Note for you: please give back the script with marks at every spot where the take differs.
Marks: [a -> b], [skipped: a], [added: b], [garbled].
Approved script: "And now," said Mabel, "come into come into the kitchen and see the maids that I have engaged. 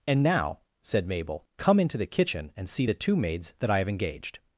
"And now," said Mabel, "come into [skipped: come into] the kitchen and see the [added: two] maids that I have engaged.